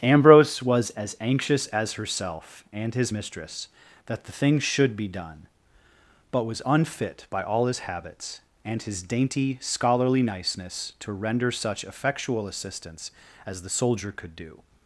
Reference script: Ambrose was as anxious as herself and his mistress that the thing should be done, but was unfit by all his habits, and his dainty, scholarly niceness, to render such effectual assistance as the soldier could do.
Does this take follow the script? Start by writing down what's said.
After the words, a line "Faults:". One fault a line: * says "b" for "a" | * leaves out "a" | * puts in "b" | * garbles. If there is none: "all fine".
Ambrose was as anxious as herself and his mistress that the thing should be done, but was unfit by all his habits, and his dainty, scholarly niceness, to render such effectual assistance as the soldier could do.
Faults:
all fine